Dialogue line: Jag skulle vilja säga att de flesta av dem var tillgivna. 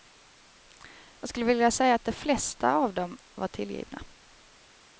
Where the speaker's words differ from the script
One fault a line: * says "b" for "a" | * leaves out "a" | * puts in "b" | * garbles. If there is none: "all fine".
all fine